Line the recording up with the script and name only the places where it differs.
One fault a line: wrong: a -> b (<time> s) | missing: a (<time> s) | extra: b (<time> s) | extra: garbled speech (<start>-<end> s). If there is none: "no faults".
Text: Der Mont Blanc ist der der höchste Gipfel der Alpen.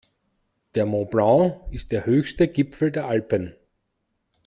missing: der (2.1 s)